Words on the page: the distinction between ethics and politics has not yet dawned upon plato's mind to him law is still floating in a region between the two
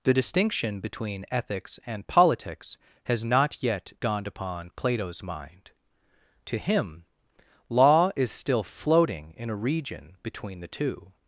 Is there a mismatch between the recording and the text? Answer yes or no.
no